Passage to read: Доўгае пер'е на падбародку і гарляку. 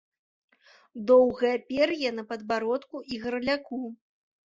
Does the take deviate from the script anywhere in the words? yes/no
no